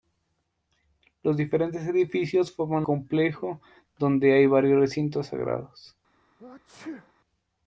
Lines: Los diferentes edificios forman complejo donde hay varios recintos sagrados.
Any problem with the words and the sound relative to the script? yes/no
yes